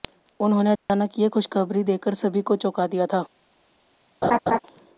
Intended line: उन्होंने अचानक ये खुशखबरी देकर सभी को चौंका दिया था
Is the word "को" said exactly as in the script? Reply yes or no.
yes